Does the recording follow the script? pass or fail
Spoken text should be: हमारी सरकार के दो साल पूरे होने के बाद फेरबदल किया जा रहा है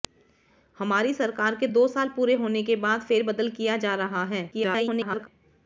fail